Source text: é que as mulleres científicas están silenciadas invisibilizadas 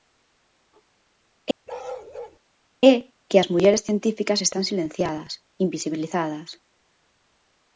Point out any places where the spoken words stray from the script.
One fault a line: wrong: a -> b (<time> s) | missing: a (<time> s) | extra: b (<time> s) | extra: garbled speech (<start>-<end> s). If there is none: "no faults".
no faults